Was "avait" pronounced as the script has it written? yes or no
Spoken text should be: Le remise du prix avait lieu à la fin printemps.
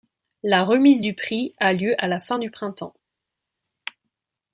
no